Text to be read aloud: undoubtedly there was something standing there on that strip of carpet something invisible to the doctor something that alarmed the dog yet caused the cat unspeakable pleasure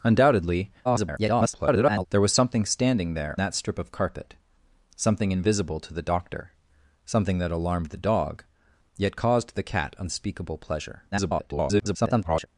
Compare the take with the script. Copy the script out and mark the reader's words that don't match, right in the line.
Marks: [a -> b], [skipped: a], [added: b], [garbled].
undoubtedly [garbled] there was something standing there [skipped: on] that strip of carpet something invisible to the doctor something that alarmed the dog yet caused the cat unspeakable pleasure [garbled]